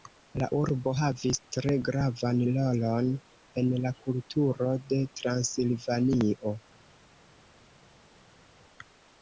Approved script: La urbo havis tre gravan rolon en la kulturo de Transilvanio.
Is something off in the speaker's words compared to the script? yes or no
no